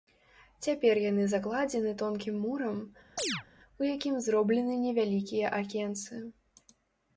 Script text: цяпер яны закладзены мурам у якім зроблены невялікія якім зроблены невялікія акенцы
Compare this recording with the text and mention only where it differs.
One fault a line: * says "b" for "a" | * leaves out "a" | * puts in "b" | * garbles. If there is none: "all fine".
* puts in "тонкім"
* leaves out "якім зроблены невялікія"